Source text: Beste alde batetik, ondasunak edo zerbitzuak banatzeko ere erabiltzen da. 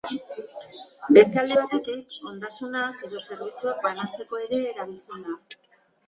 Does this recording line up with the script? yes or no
yes